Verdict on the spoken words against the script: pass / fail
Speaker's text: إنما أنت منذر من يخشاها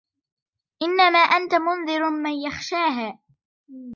pass